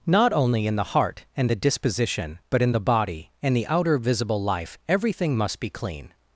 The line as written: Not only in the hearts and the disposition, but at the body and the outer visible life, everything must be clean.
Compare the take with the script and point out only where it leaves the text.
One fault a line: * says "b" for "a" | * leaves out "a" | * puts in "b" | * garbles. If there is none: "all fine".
* says "heart" for "hearts"
* says "in" for "at"